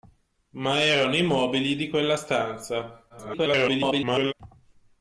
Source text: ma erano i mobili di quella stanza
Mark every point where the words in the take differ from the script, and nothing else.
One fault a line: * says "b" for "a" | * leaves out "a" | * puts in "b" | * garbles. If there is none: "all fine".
* garbles